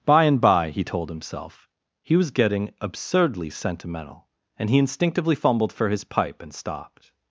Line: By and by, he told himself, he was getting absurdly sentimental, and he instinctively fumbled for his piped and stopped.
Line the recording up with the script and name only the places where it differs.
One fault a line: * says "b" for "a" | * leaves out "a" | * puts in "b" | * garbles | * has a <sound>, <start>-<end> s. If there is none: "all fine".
* says "pipe" for "piped"